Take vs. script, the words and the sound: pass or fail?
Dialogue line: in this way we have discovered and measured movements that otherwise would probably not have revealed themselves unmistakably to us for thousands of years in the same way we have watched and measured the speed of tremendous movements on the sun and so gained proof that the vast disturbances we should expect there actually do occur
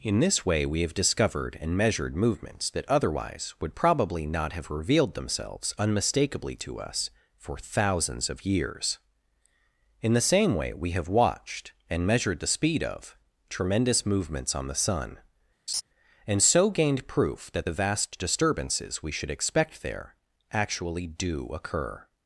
fail